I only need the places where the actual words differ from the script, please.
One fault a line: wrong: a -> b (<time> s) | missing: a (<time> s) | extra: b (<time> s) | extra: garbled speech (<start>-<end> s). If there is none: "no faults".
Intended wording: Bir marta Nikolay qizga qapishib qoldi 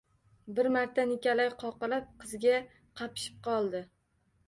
extra: qoqilib (1.7 s)